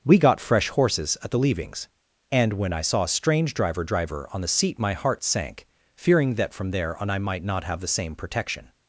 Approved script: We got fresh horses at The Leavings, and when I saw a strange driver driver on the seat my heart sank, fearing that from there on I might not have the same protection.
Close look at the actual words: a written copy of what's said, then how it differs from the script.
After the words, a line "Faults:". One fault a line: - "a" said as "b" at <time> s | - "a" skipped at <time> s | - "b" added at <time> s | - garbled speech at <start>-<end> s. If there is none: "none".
We got fresh horses at The Leavings, and when I saw a strange driver driver on the seat my heart sank, fearing that from there on I might not have the same protection.
Faults:
none